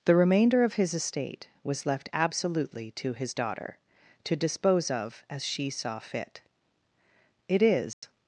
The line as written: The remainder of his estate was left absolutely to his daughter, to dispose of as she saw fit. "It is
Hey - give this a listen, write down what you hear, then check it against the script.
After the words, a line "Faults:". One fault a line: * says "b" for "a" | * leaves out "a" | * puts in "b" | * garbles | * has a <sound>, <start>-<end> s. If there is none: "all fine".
The remainder of his estate was left absolutely to his daughter, to dispose of as she saw fit. "It is
Faults:
* has a dropout, 7.9-8.0 s